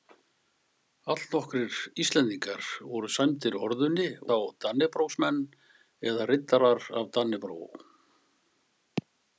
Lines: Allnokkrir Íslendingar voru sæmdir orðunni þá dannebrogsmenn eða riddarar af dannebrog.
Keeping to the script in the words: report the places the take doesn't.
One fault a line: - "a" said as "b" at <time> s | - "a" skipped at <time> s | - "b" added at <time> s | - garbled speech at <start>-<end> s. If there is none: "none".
none